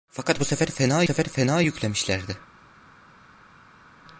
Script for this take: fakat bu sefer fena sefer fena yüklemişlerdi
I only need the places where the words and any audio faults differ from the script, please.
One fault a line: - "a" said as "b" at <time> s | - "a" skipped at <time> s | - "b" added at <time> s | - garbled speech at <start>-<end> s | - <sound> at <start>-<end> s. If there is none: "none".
none